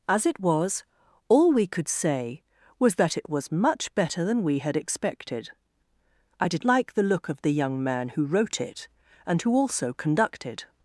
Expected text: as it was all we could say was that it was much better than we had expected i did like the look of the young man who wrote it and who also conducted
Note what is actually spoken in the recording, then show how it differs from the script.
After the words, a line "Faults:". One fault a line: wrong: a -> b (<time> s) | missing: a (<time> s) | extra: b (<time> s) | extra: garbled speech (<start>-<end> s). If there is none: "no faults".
as it was all we could say was that it was much better than we had expected i did like the look of the young man who wrote it and who also conducted
Faults:
no faults